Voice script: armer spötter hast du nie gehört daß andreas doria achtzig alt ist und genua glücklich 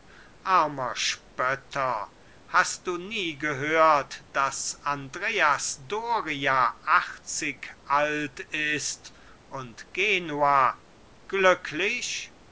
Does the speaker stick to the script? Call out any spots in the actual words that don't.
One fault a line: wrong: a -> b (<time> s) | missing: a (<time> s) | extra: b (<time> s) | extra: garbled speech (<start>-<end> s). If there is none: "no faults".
no faults